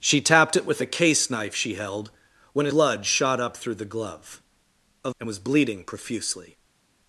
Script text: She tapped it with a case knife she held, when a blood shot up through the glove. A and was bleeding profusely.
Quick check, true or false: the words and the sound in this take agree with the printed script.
true